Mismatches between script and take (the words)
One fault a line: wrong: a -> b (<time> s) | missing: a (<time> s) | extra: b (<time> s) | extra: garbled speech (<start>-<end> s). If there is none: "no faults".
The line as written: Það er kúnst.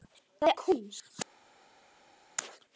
no faults